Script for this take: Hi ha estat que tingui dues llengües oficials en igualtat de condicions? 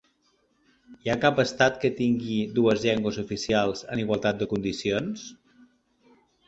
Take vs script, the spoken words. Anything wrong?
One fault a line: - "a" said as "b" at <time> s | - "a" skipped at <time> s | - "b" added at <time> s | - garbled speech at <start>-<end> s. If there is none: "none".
- "cap" added at 1.2 s